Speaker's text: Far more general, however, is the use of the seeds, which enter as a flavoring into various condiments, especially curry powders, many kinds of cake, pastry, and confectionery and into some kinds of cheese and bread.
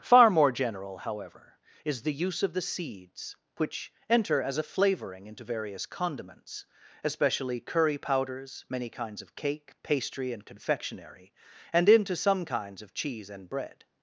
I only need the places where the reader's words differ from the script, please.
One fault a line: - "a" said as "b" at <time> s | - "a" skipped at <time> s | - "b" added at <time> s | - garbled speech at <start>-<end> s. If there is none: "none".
none